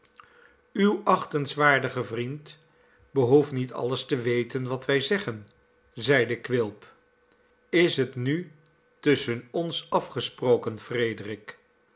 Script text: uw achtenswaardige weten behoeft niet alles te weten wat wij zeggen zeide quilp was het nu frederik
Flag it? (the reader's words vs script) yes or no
yes